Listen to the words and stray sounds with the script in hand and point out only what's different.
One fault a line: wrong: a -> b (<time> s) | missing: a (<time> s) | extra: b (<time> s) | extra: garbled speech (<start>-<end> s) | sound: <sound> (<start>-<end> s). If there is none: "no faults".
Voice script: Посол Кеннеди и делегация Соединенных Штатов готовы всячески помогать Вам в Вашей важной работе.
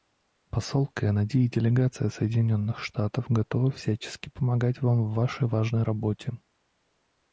no faults